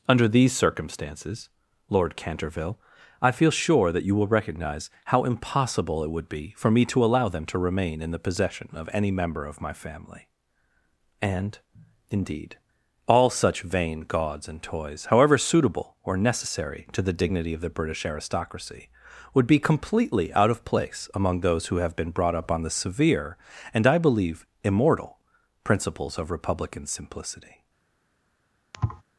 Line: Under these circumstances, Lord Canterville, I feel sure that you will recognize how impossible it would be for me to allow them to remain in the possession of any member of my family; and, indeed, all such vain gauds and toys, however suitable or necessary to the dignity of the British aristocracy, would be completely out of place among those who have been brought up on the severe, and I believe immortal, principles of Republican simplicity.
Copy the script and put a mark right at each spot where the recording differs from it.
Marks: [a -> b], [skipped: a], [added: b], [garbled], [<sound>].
Under these circumstances, Lord Canterville, I feel sure that you will recognize how impossible it would be for me to allow them to remain in the possession of any member of my family; and, indeed, all such vain gauds and toys, however suitable or necessary to the dignity of the British aristocracy, would be completely out of place among those who have been brought up on the severe, and I believe immortal, principles of Republican simplicity. [thud]